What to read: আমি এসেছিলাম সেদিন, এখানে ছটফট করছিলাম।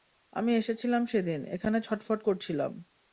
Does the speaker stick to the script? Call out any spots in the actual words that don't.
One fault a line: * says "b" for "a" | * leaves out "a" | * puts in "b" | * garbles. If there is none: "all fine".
all fine